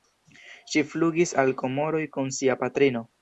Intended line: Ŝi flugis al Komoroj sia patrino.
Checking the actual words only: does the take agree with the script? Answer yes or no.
no